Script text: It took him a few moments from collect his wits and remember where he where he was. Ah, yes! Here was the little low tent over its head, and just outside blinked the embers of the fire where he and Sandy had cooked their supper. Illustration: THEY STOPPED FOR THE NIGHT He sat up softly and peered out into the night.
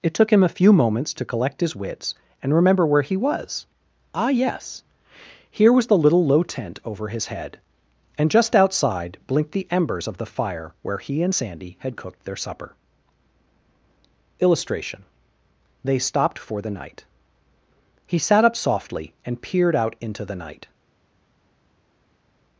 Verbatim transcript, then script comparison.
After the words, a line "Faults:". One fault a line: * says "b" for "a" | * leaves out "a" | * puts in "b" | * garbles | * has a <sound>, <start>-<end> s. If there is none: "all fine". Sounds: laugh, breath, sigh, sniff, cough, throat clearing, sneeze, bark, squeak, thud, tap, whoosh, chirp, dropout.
It took him a few moments to collect his wits and remember where he was. Ah, yes! Here was the little low tent over his head, and just outside blinked the embers of the fire where he and Sandy had cooked their supper. Illustration: THEY STOPPED FOR THE NIGHT He sat up softly and peered out into the night.
Faults:
* says "to" for "from"
* leaves out "where he"
* says "his" for "its"